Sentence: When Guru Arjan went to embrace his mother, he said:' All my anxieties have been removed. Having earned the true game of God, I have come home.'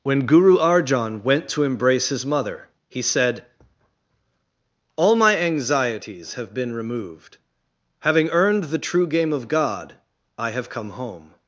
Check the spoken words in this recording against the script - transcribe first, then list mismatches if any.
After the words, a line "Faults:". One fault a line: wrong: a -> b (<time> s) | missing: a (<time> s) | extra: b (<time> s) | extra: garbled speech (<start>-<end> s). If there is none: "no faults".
When Guru Arjan went to embrace his mother, he said:' All my anxieties have been removed. Having earned the true game of God, I have come home.'
Faults:
no faults